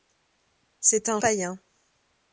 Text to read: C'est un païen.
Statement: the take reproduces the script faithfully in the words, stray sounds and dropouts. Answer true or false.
true